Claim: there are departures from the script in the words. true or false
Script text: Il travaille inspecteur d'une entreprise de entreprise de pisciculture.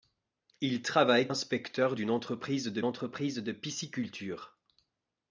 false